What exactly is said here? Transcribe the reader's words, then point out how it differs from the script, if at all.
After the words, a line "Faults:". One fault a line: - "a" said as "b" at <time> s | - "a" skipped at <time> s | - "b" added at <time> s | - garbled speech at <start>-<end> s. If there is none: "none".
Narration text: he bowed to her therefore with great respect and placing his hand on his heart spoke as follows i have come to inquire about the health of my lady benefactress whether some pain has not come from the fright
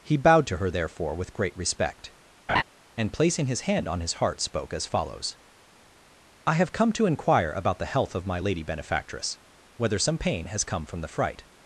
he bowed to her therefore with great respect and placing his hand on his heart spoke as follows i have come to inquire about the health of my lady benefactress whether some pain has come from the fright
Faults:
- "not" skipped at 10.6 s